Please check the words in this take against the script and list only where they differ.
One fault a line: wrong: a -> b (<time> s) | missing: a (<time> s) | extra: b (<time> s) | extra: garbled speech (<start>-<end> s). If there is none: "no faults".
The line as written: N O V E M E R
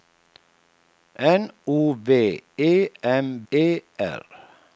no faults